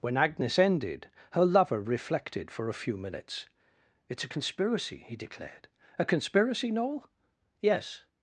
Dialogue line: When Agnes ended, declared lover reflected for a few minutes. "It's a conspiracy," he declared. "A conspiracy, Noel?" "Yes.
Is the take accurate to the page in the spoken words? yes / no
no